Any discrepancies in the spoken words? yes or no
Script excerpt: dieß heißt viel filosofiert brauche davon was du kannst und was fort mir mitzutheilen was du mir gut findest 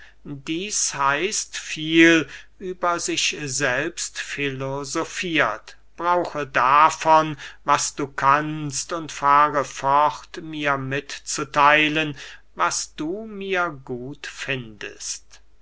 yes